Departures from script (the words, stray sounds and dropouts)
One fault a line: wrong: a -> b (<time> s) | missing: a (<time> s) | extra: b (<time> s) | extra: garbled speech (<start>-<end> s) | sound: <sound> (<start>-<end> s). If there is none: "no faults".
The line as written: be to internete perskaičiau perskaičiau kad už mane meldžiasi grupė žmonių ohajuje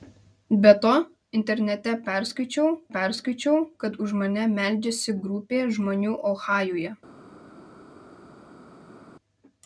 no faults